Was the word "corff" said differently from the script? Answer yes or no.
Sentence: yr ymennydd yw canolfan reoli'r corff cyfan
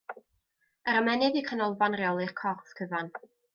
no